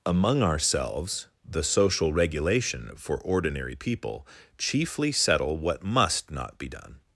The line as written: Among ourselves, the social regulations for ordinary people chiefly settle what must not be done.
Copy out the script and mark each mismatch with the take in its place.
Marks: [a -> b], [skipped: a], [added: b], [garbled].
Among ourselves, the social [regulations -> regulation] for ordinary people chiefly settle what must not be done.